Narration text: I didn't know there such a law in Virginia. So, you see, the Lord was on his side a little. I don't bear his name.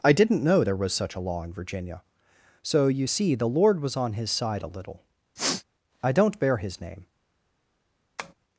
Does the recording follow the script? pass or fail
fail